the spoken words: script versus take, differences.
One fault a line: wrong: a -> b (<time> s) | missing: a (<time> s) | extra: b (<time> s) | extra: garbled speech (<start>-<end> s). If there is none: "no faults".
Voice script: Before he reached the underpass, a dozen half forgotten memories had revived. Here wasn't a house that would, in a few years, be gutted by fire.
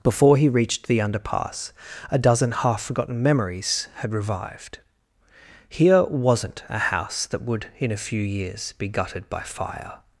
no faults